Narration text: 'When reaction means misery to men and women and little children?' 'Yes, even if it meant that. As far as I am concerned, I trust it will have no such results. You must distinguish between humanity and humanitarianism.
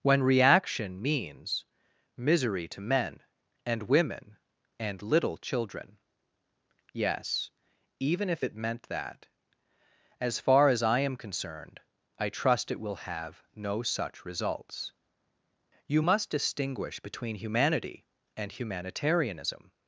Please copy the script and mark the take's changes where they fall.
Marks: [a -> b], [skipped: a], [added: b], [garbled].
'When reaction means misery to men and women and little children?' 'Yes, even if it meant that. As far as I am concerned, I trust it will have no such results. You must distinguish between humanity and humanitarianism.